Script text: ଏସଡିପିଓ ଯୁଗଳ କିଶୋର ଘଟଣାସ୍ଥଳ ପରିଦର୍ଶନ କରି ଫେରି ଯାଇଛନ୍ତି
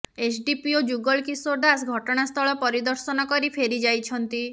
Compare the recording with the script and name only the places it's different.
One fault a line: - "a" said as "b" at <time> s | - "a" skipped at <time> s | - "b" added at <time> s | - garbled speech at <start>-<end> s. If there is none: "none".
- "ଦାସ" added at 1.6 s